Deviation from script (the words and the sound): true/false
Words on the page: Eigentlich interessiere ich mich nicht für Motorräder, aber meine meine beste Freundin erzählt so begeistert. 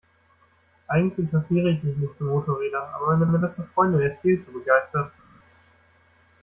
false